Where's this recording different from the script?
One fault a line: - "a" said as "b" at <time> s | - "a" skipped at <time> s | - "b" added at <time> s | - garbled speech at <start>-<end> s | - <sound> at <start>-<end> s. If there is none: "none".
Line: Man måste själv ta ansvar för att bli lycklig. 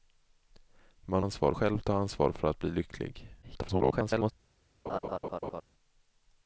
- "måste" said as "ansvar" at 1.2 s
- garbled speech at 3.4-4.3 s
- laugh at 4.9-5.6 s